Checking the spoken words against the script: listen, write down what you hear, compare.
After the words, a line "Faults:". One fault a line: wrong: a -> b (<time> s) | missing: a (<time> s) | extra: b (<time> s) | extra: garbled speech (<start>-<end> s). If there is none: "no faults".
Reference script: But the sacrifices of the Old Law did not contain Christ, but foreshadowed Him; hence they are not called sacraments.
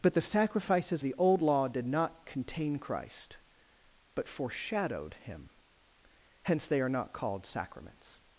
But the sacrifices the Old Law did not contain Christ, but foreshadowed Him; hence they are not called sacraments.
Faults:
missing: of (1.0 s)